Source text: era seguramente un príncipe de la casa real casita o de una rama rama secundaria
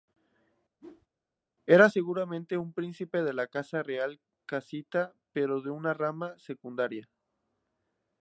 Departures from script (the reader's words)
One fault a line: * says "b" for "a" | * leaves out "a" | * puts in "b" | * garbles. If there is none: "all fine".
* says "pero" for "o"
* leaves out "rama"